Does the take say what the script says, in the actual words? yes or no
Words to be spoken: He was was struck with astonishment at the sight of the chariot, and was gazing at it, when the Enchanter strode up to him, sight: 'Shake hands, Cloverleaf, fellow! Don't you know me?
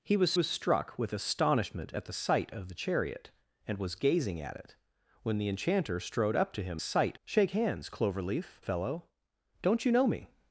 yes